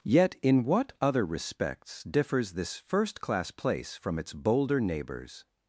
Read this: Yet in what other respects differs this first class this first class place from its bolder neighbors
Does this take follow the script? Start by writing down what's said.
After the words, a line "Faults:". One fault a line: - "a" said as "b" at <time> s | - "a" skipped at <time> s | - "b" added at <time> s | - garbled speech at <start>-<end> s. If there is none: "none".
Yet in what other respects differs this first class place from its bolder neighbors
Faults:
- "this first class" skipped at 3.5 s